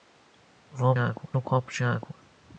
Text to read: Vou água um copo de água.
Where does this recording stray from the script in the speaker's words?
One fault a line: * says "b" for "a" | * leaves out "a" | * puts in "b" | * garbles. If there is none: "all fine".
all fine